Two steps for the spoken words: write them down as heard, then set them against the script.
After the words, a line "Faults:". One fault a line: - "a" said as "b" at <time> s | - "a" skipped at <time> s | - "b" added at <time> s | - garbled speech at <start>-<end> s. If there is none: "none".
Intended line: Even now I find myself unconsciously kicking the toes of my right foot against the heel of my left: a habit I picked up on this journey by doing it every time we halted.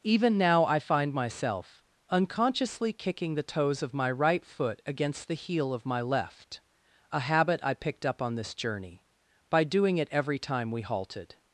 Even now I find myself unconsciously kicking the toes of my right foot against the heel of my left: a habit I picked up on this journey by doing it every time we halted.
Faults:
none